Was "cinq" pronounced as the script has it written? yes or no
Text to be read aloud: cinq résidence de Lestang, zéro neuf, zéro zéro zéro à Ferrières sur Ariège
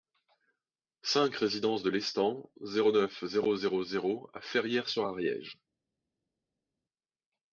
yes